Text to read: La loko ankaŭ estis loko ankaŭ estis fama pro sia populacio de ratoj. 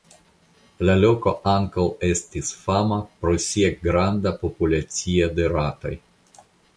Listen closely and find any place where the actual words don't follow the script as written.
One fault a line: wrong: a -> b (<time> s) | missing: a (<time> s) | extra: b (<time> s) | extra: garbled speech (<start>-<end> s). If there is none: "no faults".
missing: loko ankaŭ estis (2.5 s)
extra: granda (3.8 s)